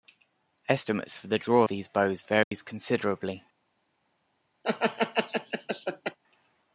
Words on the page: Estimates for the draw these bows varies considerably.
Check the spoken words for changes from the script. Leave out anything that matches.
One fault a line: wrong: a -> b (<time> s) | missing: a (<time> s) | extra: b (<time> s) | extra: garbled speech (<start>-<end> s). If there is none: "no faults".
no faults